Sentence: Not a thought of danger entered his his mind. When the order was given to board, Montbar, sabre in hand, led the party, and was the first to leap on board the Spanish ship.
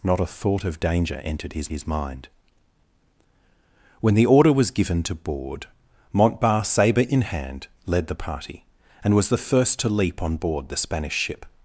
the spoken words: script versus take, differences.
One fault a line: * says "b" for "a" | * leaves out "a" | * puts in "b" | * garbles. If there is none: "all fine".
all fine